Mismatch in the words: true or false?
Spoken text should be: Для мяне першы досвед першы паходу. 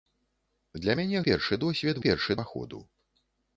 false